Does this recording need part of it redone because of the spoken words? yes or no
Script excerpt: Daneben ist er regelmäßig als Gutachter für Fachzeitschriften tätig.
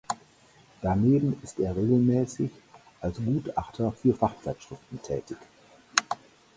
no